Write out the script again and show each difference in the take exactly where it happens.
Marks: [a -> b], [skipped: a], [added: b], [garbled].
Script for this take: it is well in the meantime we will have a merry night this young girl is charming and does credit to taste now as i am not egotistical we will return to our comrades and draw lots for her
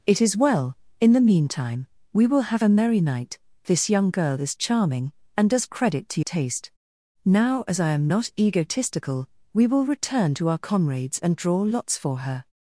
it is well in the meantime we will have a merry night this young girl is charming and does credit to taste now as i am not egotistical we will return to our comrades and draw lots for her